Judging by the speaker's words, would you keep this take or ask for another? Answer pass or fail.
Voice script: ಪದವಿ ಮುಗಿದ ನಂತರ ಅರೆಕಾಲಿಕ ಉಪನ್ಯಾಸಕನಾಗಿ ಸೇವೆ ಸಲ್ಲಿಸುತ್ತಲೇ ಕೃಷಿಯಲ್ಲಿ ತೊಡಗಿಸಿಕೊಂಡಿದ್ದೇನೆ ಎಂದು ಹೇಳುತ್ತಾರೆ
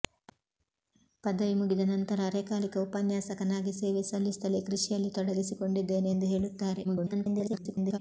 fail